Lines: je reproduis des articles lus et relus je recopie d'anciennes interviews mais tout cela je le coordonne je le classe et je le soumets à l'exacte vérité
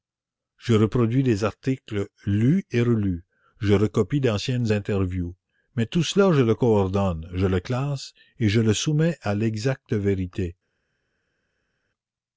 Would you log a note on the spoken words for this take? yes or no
no